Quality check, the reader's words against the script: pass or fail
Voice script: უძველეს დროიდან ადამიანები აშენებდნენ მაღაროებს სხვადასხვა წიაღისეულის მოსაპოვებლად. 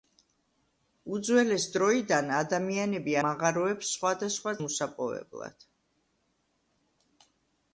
fail